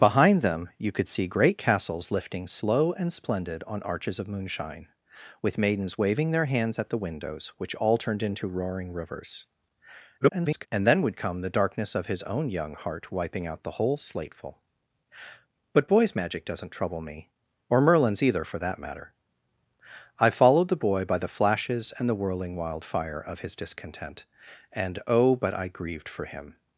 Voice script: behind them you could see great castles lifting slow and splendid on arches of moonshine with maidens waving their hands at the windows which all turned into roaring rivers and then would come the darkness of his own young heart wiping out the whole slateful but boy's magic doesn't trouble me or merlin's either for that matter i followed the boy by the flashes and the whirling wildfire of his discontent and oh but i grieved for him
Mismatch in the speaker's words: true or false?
true